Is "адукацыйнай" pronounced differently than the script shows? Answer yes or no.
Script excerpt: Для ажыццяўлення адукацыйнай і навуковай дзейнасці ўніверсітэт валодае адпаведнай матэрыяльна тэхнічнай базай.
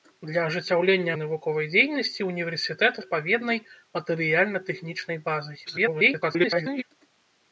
yes